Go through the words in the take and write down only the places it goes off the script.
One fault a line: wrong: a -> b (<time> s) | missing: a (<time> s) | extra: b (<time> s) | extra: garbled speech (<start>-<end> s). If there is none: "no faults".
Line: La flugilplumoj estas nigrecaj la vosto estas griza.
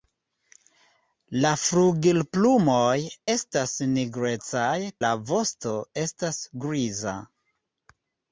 no faults